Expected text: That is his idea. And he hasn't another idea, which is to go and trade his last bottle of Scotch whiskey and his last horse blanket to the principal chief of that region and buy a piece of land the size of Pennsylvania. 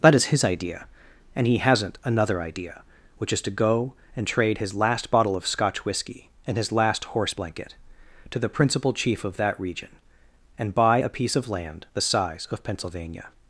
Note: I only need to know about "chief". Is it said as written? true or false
true